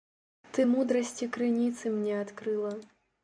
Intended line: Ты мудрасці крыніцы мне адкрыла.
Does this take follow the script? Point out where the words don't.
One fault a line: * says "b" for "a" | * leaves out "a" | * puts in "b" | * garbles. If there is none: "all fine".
all fine